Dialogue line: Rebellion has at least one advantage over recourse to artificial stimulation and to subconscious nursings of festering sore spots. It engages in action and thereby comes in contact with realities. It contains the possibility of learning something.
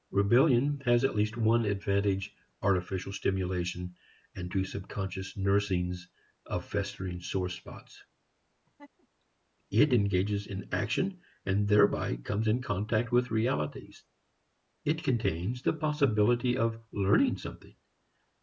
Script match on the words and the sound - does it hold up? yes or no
no